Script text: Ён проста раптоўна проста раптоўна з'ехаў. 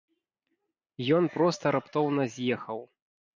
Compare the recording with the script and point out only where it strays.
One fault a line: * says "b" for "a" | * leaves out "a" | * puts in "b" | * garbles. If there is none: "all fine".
* leaves out "проста раптоўна"